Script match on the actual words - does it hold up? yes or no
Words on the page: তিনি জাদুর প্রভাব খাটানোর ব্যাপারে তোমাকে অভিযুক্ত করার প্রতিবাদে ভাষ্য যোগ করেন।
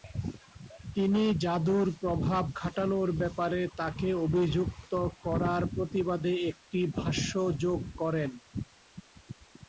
no